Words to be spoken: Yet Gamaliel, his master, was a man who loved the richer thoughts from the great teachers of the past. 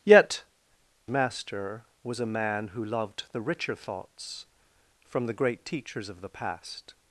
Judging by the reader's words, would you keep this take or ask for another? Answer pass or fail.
fail